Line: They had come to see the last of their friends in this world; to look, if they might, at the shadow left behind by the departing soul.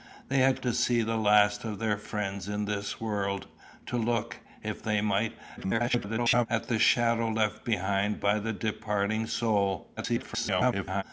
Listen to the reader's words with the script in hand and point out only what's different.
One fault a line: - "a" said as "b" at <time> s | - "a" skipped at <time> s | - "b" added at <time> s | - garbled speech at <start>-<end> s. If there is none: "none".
- "come" skipped at 0.6 s
- garbled speech at 5.6-6.5 s
- garbled speech at 10.0-11.0 s